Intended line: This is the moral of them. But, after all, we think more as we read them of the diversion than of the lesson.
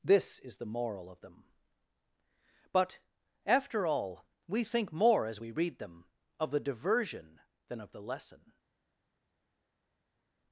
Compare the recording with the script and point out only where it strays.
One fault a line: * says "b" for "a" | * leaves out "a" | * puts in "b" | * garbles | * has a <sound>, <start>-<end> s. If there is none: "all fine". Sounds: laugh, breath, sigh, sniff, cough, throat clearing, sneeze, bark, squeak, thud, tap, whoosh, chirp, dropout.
all fine